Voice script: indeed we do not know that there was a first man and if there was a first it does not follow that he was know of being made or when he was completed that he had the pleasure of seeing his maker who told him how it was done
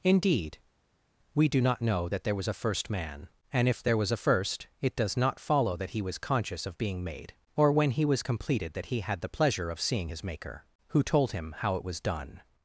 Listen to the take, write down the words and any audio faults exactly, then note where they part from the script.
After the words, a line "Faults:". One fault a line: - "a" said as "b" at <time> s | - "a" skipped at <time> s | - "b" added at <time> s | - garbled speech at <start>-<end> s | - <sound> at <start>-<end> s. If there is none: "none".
indeed we do not know that there was a first man and if there was a first it does not follow that he was conscious of being made or when he was completed that he had the pleasure of seeing his maker who told him how it was done
Faults:
- "know" said as "conscious" at 6.2 s